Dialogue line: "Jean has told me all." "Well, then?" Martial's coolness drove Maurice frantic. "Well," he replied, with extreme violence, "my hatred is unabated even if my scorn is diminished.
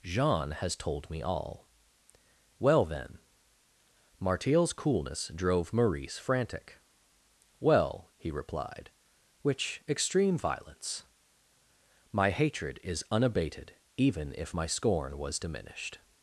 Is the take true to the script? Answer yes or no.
no